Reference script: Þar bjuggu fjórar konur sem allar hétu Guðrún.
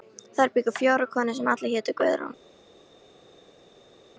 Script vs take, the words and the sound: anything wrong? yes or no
no